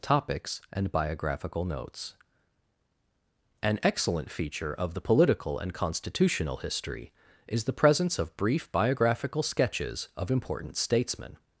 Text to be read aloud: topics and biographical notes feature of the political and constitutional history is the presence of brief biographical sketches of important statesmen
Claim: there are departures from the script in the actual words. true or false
true